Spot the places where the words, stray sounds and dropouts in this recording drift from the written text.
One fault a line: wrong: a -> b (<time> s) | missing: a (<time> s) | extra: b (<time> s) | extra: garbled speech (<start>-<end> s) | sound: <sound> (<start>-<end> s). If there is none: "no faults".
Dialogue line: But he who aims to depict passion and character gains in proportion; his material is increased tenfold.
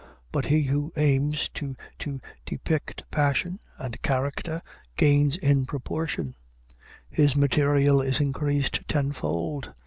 extra: to (1.9 s)